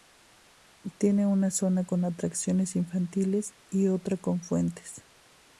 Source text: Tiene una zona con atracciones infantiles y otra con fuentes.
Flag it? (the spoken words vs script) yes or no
no